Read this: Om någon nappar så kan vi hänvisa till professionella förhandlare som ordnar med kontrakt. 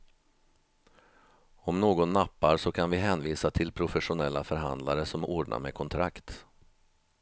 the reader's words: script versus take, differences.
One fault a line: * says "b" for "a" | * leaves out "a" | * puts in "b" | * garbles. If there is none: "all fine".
all fine